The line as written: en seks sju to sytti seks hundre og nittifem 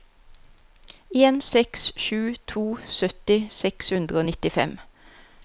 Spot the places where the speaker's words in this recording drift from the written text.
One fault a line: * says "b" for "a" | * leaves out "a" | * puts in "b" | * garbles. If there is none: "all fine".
all fine